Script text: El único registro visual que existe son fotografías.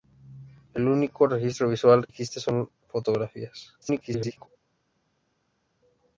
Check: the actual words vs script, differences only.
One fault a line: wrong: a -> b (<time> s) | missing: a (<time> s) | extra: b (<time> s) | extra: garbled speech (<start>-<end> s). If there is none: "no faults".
missing: que (2.1 s)
extra: garbled speech (3.8-4.5 s)